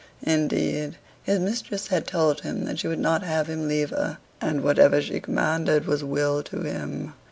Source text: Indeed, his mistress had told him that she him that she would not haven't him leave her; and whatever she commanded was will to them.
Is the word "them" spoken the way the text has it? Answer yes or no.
no